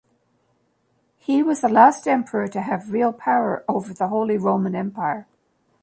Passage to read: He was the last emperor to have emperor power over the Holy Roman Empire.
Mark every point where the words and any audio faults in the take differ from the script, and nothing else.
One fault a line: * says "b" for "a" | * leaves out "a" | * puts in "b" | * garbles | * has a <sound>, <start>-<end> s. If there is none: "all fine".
* says "real" for "emperor"